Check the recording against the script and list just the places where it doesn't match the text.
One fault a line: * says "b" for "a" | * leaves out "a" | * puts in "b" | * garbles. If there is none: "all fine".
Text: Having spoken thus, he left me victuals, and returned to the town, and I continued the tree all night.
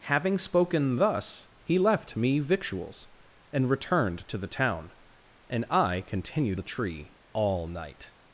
all fine